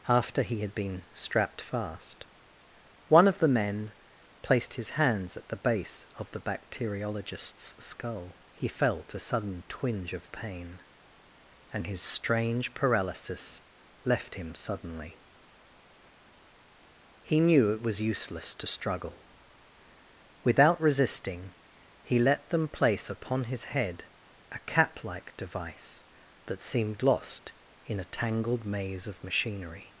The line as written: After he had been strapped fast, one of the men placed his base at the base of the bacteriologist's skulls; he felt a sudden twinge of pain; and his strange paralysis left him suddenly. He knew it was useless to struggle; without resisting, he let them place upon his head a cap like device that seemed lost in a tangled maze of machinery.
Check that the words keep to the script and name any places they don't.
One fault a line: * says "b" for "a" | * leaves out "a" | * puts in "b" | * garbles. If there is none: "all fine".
* says "hands" for "base"
* says "skull" for "skulls"